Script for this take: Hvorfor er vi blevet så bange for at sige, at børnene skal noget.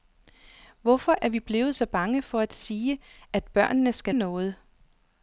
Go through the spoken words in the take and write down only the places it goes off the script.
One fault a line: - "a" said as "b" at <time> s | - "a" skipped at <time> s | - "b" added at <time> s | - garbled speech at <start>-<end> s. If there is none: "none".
none